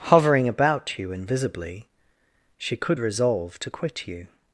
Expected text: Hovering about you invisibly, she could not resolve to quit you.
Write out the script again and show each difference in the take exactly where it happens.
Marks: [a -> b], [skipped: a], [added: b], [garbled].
Hovering about you invisibly, she could [skipped: not] resolve to quit you.